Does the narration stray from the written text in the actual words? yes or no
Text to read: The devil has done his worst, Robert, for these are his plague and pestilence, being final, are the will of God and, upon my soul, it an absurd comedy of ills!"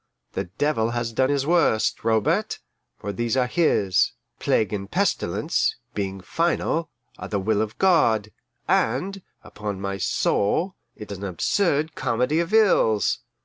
no